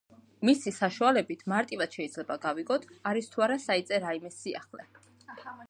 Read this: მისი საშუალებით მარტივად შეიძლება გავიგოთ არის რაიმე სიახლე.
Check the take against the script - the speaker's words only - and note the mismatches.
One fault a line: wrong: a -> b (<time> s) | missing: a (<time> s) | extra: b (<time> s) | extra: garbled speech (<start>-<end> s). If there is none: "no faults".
extra: თუ არა საიტზე (3.4 s)